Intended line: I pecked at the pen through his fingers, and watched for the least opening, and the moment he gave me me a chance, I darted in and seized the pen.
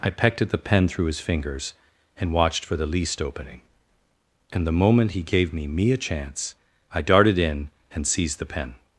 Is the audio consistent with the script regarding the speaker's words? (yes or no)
yes